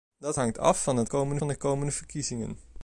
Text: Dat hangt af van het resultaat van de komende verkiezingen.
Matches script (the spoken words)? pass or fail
fail